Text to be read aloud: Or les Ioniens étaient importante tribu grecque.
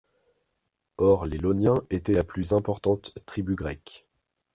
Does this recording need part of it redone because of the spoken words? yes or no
yes